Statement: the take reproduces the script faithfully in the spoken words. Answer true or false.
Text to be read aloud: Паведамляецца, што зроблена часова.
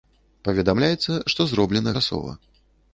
true